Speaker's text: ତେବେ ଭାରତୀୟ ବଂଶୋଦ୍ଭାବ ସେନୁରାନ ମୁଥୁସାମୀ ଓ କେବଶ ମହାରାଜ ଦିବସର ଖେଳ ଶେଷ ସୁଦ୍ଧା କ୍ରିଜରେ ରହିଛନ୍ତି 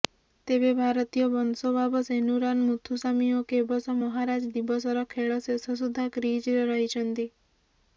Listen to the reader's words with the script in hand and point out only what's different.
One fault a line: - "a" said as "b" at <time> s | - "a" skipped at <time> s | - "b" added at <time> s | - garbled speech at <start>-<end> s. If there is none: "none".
none